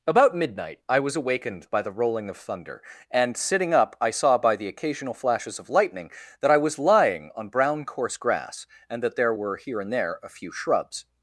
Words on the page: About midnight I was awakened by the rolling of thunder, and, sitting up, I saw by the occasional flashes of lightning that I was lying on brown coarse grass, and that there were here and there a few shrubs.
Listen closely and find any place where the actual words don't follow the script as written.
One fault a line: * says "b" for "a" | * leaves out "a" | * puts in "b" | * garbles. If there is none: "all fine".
all fine